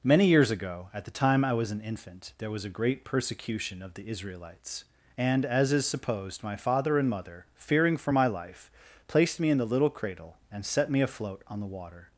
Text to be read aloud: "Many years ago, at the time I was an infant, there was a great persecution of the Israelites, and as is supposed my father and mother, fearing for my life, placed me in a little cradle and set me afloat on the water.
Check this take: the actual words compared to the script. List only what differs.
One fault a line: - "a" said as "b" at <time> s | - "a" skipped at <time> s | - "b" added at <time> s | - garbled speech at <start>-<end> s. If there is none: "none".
- "a" said as "the" at 9.6 s